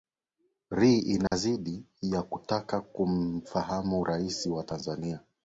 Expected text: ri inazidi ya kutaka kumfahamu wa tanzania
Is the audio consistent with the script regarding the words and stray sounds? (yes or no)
no